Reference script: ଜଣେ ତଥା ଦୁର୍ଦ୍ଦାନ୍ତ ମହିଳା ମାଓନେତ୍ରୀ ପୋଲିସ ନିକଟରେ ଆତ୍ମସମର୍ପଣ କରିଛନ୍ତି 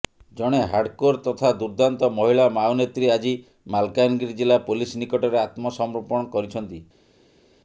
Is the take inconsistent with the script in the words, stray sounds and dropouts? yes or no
yes